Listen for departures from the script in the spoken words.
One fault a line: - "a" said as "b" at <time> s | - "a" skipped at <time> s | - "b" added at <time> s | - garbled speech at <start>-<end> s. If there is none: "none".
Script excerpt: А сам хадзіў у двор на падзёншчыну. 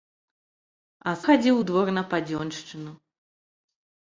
- "сам" skipped at 1.1 s